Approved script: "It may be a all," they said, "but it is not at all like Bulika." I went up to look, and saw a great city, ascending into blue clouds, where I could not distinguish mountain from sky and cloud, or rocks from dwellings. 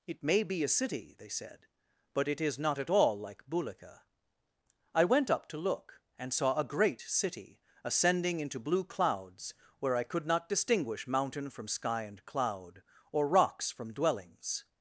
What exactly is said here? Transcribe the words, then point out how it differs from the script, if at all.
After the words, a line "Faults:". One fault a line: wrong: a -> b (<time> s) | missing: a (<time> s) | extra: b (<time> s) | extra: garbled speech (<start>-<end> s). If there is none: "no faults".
"It may be a city," they said, "but it is not at all like Bulika." I went up to look, and saw a great city, ascending into blue clouds, where I could not distinguish mountain from sky and cloud, or rocks from dwellings.
Faults:
wrong: all -> city (0.7 s)